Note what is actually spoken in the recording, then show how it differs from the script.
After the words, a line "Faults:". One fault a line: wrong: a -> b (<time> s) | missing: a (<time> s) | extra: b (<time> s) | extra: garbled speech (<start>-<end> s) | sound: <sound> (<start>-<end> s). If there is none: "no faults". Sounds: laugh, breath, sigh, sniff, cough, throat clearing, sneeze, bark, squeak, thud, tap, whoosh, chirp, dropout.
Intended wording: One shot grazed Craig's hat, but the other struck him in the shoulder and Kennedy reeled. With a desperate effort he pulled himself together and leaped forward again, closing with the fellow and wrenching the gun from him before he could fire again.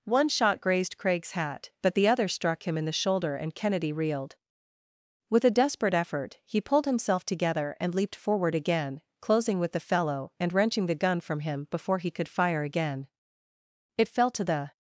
One shot grazed Craig's hat, but the other struck him in the shoulder and Kennedy reeled. With a desperate effort he pulled himself together and leaped forward again, closing with the fellow and wrenching the gun from him before he could fire again. It fell to the
Faults:
extra: It fell to the (14.0 s)